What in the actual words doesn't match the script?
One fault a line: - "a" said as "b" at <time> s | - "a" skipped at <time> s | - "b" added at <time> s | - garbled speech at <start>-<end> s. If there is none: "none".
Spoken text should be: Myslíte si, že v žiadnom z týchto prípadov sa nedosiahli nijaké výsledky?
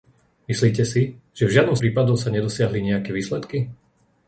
- "z týchto" skipped at 1.8 s